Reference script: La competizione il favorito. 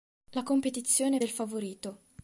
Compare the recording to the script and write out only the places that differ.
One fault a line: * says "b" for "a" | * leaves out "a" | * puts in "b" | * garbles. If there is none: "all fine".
all fine